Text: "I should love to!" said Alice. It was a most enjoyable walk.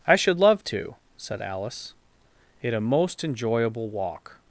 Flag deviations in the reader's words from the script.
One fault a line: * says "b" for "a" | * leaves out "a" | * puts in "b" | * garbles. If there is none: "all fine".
* leaves out "was"